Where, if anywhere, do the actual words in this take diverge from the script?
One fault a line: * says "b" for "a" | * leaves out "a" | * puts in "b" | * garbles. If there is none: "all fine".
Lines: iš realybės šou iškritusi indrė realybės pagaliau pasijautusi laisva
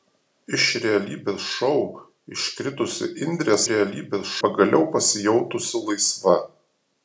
all fine